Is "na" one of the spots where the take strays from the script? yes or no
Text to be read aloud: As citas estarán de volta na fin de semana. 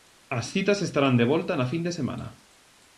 no